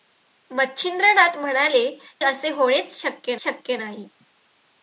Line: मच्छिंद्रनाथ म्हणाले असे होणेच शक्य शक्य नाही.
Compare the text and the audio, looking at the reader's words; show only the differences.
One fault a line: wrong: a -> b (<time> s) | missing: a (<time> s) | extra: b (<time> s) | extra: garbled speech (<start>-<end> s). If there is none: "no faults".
no faults